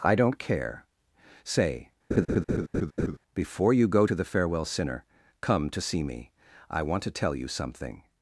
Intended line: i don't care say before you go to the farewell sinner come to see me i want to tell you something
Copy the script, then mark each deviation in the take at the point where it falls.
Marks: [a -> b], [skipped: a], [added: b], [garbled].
i don't care say before you go to the farewell sinner come to see me i want to tell you something